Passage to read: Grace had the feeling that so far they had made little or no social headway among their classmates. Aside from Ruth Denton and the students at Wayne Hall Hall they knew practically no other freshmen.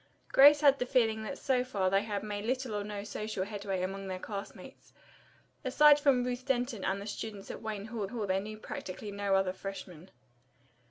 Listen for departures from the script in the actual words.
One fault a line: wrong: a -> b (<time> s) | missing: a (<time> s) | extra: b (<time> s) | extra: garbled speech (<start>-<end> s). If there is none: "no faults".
no faults